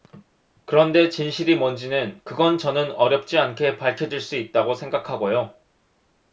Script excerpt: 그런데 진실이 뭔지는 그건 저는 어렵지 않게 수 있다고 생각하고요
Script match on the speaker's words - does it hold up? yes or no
no